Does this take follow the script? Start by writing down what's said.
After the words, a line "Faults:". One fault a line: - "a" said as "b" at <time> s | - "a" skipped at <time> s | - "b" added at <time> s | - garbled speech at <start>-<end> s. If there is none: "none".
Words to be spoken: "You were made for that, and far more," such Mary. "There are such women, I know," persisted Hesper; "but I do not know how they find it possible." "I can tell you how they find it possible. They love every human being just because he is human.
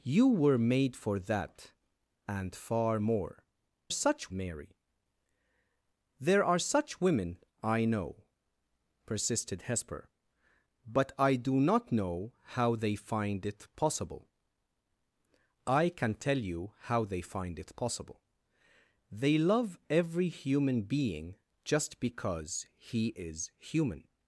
"You were made for that, and far more," such Mary. "There are such women, I know," persisted Hesper; "but I do not know how they find it possible." "I can tell you how they find it possible. They love every human being just because he is human.
Faults:
none